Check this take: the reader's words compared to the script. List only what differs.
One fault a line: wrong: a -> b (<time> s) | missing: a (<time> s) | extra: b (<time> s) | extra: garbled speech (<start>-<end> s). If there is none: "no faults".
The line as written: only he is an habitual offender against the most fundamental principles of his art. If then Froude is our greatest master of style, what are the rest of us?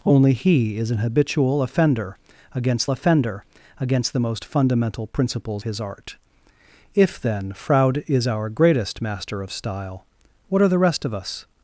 extra: offender against (2.9 s)
missing: of (5.6 s)